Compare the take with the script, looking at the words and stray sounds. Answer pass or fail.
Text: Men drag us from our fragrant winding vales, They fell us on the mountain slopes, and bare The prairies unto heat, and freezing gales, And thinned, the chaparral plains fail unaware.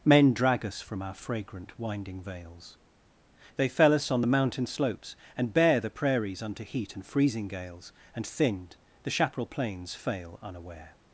pass